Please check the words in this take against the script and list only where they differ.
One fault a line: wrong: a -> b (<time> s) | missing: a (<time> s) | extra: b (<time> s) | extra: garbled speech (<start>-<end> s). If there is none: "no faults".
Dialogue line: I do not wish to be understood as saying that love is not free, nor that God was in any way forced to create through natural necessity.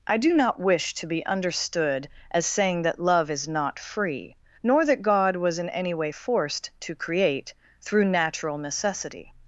no faults